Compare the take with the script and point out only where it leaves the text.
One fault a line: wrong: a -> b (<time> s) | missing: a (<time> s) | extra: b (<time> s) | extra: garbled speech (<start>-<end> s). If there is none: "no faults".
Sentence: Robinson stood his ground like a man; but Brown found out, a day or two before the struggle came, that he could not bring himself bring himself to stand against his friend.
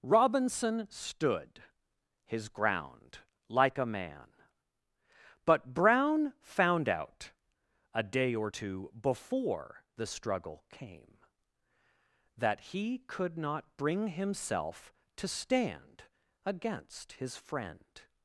missing: bring himself (14.9 s)